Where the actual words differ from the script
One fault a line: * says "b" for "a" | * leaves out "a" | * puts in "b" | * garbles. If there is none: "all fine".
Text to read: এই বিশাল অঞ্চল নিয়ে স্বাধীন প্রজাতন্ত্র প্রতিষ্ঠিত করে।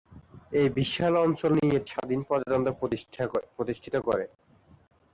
all fine